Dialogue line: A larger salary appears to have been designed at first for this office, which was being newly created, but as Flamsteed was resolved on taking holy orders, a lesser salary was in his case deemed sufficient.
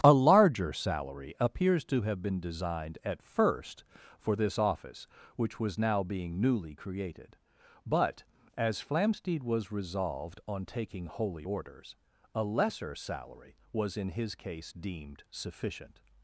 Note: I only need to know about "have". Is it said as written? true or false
true